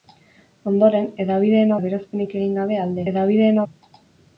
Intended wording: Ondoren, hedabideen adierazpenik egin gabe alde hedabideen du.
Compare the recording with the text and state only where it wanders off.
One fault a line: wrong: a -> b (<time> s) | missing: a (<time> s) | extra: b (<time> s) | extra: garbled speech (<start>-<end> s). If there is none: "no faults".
no faults